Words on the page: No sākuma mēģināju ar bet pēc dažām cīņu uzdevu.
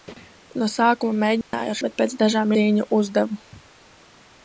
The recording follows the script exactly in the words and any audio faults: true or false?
false